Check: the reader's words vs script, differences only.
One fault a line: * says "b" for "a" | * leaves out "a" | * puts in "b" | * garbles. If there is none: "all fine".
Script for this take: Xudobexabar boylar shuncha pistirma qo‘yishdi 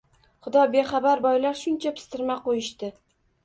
all fine